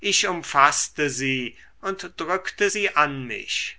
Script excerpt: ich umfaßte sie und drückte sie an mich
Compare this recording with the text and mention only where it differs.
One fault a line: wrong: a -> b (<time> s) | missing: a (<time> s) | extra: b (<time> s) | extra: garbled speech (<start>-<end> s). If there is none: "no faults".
no faults